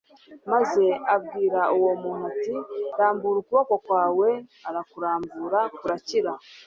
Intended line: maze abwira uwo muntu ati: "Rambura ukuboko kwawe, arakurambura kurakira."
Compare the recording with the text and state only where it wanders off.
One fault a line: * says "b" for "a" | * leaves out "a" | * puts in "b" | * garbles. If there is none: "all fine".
all fine